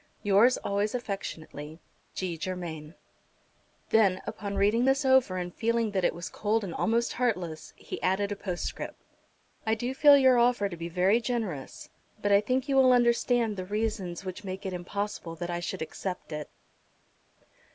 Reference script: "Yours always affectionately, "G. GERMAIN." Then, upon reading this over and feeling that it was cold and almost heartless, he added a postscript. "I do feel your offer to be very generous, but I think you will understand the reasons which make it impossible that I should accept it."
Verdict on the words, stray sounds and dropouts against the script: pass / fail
pass